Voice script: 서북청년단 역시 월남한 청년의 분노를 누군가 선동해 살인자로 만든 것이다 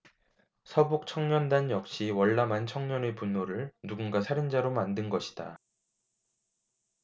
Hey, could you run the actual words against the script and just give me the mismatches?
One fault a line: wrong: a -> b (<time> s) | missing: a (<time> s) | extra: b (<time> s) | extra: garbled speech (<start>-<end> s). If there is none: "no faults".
missing: 선동해 (4.2 s)